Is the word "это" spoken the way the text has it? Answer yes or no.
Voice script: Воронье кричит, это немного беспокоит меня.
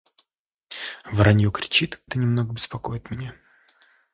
yes